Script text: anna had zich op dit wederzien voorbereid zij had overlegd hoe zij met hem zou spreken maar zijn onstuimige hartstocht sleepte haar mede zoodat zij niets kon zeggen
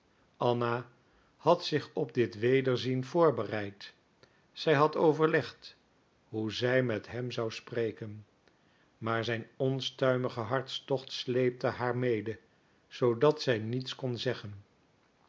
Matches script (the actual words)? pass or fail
pass